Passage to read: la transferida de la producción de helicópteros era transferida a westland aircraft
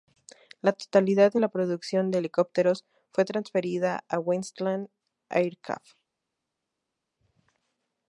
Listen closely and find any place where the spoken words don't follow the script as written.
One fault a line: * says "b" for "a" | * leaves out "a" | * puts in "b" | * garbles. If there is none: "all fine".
* says "totalidad" for "transferida"
* says "fue" for "era"